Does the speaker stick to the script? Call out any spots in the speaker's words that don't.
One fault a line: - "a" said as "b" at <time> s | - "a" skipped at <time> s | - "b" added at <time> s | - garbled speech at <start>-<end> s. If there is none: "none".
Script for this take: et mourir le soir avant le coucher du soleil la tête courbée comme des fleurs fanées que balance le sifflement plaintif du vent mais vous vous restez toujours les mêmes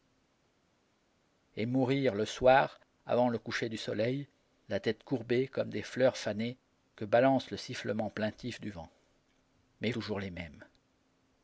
- "vous vous restez" skipped at 9.9 s